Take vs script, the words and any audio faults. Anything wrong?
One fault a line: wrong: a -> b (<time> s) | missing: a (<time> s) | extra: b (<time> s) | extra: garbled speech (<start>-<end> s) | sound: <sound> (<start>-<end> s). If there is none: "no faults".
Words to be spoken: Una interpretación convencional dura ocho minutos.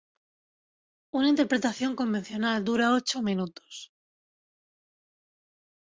no faults